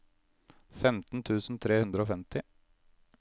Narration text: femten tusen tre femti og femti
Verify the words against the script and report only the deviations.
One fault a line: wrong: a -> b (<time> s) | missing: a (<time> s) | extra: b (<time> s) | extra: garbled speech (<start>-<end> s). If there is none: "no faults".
wrong: femti -> hundre (1.8 s)